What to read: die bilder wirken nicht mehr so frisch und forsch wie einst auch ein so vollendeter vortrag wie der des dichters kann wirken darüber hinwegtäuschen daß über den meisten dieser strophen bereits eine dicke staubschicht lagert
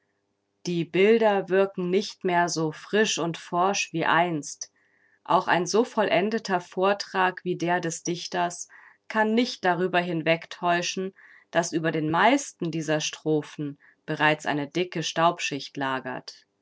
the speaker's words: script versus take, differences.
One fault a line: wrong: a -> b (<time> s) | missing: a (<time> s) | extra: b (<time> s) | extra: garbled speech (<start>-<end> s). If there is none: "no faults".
wrong: wirken -> nicht (9.3 s)